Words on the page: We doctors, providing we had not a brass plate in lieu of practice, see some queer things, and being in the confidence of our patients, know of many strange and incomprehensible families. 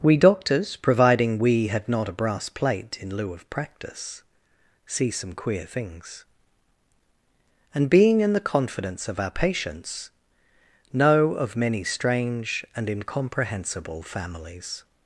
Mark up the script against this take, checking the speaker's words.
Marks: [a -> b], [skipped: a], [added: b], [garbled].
We doctors, providing we had not a brass plate in lieu of practice, see some queer things, and being in the confidence of our patients, know of many strange and incomprehensible families.